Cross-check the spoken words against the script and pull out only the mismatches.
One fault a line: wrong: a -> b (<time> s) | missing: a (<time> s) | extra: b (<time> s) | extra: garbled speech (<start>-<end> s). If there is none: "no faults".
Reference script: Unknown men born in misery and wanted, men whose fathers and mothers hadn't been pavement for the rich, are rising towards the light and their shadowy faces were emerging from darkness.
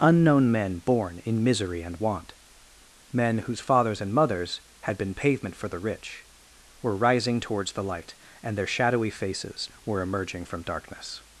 wrong: wanted -> want (2.0 s)
wrong: hadn't -> had (4.8 s)
wrong: are -> were (6.8 s)